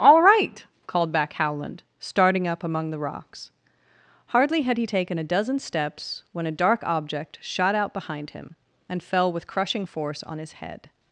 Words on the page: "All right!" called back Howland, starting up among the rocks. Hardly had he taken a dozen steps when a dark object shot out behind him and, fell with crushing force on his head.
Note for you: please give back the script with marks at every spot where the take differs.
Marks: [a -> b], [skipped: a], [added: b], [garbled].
"All right!" called back Howland, starting up among the rocks. Hardly had he taken a dozen steps when a dark object shot out behind him and, fell with crushing force on his head.